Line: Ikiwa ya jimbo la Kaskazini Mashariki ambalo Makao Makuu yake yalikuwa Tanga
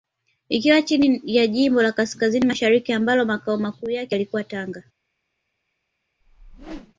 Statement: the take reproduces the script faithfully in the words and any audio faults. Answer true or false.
false